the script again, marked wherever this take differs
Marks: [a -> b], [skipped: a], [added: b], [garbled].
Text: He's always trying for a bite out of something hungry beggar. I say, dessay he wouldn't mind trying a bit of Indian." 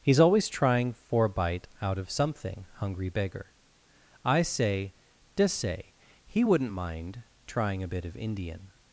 He's always trying for a bite out of something hungry beggar. I say, dessay he wouldn't mind trying a bit of Indian."